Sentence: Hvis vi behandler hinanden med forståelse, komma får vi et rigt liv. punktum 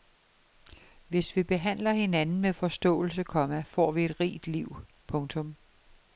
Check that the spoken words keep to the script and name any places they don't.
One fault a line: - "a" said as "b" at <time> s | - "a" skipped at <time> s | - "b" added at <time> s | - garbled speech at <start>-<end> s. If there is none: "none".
none